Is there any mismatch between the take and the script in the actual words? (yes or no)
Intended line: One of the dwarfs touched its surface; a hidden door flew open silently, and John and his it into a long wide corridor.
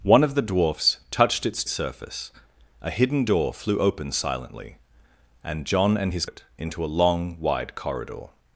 no